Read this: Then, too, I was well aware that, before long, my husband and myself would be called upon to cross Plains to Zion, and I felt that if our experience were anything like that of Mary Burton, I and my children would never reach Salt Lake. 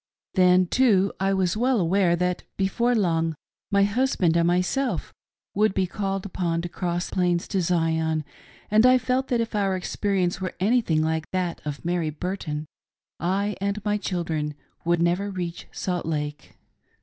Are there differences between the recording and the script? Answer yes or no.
no